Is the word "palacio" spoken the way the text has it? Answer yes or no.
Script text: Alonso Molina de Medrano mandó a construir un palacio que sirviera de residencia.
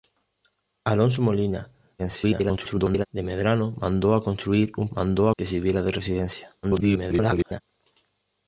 no